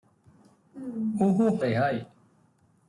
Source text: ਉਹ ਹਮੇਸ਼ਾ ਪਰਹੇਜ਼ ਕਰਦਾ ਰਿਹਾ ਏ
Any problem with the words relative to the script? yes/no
yes